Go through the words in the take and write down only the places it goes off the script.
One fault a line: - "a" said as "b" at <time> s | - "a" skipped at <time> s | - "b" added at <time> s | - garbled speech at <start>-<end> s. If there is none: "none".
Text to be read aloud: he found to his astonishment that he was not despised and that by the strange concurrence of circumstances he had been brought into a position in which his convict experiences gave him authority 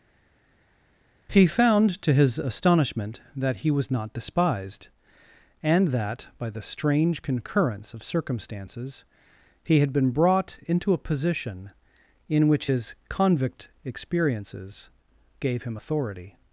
none